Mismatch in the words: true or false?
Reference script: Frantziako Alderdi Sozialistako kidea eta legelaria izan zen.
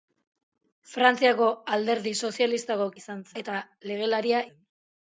true